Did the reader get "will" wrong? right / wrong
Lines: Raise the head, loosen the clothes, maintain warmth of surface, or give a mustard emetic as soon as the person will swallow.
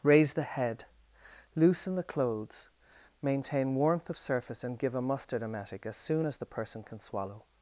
wrong